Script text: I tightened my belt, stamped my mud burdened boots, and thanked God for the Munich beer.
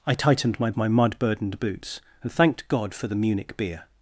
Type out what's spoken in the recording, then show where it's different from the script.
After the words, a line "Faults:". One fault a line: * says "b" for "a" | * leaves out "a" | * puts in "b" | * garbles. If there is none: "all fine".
I tightened my my mud burdened boots, and thanked God for the Munich beer.
Faults:
* leaves out "belt stamped"